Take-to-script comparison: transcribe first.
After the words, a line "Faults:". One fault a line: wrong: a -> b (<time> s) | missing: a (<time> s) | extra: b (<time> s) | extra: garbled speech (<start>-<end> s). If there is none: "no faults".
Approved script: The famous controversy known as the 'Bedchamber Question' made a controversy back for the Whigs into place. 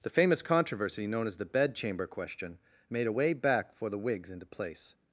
The famous controversy known as the 'Bedchamber Question' made a way back for the Whigs into place.
Faults:
wrong: controversy -> way (3.1 s)